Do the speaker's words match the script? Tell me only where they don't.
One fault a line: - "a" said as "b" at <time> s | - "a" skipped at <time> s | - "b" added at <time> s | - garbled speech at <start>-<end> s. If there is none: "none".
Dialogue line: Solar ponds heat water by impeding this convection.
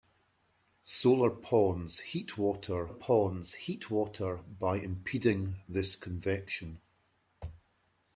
- "ponds heat water" added at 2.9 s